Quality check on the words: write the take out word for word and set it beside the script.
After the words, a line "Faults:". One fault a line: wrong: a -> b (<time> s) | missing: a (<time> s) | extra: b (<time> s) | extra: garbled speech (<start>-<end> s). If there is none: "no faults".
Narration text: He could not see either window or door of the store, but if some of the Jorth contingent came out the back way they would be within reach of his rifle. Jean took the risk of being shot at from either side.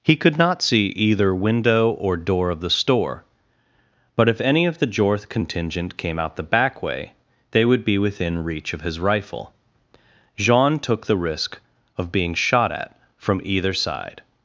He could not see either window or door of the store, but if any of the Jorth contingent came out the back way they would be within reach of his rifle. Jean took the risk of being shot at from either side.
Faults:
wrong: some -> any (4.4 s)